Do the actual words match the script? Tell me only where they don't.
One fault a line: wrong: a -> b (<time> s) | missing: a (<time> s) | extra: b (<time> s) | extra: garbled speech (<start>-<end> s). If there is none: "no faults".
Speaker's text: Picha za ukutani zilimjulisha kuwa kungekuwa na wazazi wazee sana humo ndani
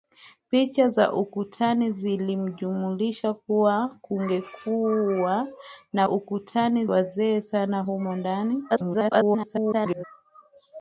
wrong: wazazi -> ukutani (6.1 s)
extra: garbled speech (8.7-10.0 s)